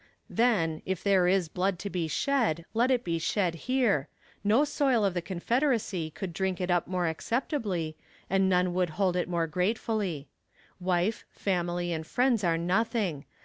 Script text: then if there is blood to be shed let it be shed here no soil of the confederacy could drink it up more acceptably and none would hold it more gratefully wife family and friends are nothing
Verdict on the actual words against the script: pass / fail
pass